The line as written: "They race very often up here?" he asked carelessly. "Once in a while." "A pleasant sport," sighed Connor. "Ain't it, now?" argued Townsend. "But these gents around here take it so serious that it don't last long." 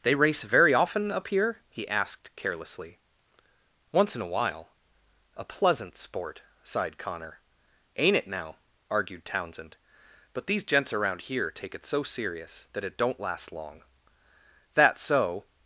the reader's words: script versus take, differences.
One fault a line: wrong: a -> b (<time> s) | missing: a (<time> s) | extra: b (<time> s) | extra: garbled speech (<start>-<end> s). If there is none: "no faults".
extra: That so (14.7 s)